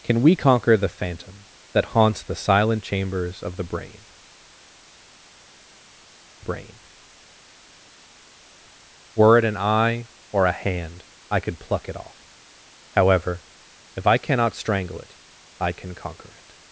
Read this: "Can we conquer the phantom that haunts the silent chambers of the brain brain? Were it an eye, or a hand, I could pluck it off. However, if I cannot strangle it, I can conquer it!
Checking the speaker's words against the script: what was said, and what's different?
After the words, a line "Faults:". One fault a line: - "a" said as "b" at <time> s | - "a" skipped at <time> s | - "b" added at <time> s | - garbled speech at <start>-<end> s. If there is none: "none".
"Can we conquer the phantom that haunts the silent chambers of the brain brain? Were it an eye, or a hand, I could pluck it off. However, if I cannot strangle it, I can conquer it!
Faults:
none